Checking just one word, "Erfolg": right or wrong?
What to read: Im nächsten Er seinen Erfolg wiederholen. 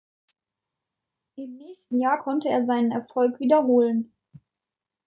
right